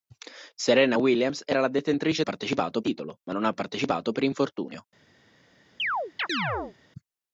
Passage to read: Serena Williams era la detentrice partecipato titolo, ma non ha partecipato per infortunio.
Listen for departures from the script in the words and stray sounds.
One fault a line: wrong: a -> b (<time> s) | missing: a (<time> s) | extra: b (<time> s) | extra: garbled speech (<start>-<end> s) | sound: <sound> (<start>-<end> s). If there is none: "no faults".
sound: chirp (5.8-6.8 s)